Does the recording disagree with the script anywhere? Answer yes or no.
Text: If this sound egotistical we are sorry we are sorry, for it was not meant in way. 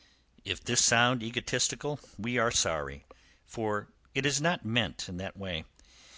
yes